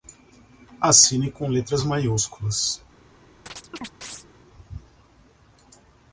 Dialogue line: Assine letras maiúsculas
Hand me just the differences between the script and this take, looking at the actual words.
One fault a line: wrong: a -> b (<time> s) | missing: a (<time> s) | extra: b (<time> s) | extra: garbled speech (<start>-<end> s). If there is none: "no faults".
extra: com (1.3 s)